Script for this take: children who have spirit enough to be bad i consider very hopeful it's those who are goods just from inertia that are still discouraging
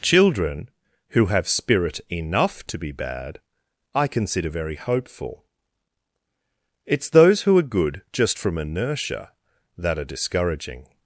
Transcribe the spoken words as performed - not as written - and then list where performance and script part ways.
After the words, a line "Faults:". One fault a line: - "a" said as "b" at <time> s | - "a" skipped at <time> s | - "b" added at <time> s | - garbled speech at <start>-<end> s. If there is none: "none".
children who have spirit enough to be bad i consider very hopeful it's those who are good just from inertia that are discouraging
Faults:
- "goods" said as "good" at 7.6 s
- "still" skipped at 10.1 s